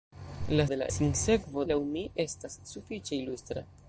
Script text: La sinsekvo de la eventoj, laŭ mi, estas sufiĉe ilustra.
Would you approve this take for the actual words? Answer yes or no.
no